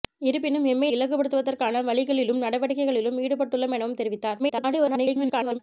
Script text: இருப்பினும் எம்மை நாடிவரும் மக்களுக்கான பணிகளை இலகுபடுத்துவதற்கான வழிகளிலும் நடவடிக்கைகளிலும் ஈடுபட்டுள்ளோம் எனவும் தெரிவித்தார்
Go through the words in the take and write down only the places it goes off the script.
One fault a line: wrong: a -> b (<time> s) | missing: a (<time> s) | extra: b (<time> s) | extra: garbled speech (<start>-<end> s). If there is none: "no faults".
missing: நாடிவரும் மக்களுக்கான பணிகளை (0.9 s)
extra: garbled speech (4.4-5.6 s)